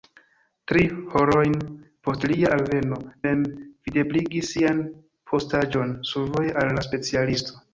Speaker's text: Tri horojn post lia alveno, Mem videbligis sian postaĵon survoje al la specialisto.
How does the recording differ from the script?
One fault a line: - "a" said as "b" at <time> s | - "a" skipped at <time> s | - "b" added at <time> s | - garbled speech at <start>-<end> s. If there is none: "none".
none